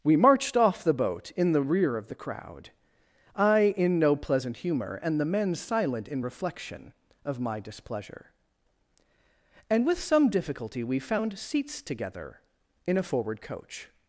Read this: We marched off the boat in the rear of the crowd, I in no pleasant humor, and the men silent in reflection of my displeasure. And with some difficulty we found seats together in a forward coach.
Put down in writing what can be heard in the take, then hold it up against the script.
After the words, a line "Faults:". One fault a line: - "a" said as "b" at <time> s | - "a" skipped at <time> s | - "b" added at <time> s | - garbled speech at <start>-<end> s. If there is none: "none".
We marched off the boat in the rear of the crowd, I in no pleasant humor, and the men silent in reflection of my displeasure. And with some difficulty we found seats together in a forward coach.
Faults:
none